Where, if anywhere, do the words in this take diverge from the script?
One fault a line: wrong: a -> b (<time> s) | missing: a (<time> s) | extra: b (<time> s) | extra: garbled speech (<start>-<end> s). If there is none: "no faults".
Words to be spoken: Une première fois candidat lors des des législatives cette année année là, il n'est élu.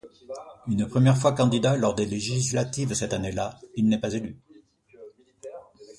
missing: des (2.1 s)
missing: année (3.3 s)
extra: pas (4.0 s)